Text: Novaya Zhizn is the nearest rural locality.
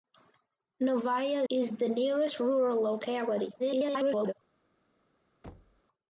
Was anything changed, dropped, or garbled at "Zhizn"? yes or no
yes